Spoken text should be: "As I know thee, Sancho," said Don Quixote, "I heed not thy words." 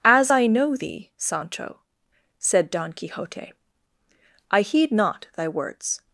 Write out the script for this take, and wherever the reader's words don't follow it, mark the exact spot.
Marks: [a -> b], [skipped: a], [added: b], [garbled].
"As I know thee, Sancho," said Don Quixote, "I heed not thy words."